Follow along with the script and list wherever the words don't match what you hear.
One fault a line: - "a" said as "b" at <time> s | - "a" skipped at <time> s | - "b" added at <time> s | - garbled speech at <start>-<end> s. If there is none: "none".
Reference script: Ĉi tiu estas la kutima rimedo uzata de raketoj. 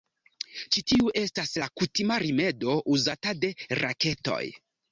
none